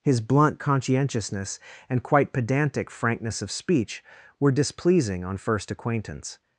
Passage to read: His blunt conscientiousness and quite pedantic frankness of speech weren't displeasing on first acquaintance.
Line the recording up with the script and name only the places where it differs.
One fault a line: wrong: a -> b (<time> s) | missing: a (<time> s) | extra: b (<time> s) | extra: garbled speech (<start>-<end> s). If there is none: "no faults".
wrong: weren't -> were (4.4 s)